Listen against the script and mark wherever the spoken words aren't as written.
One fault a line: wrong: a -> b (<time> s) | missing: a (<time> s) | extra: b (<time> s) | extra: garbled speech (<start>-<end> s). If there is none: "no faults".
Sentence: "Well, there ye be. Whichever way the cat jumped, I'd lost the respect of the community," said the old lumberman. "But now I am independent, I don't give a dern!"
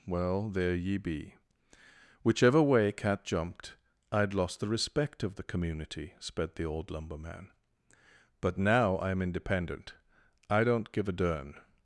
missing: the (2.9 s)
wrong: said -> sped (6.2 s)